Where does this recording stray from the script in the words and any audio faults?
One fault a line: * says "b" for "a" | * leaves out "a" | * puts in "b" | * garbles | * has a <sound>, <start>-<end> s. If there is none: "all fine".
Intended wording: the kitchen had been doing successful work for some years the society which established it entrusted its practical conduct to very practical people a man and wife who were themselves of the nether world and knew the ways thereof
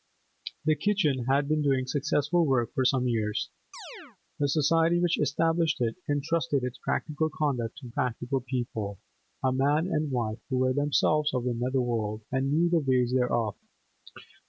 * has a chirp, 3.7-4.2 s
* leaves out "very"